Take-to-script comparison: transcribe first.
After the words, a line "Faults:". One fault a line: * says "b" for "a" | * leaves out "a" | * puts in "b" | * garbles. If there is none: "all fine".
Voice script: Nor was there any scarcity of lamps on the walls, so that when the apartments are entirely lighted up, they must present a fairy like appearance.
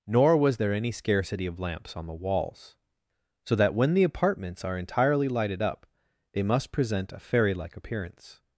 Nor was there any scarcity of lamps on the walls, so that when the apartments are entirely lighted up, they must present a fairy like appearance.
Faults:
all fine